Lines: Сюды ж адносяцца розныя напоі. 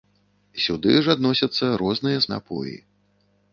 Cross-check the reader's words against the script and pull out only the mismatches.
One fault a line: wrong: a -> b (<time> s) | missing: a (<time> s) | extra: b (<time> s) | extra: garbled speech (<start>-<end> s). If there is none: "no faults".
no faults